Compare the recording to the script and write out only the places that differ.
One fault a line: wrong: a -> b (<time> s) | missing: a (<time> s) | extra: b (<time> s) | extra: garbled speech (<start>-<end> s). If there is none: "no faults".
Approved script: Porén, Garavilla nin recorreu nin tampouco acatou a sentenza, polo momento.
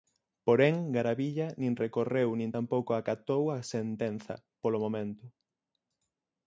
no faults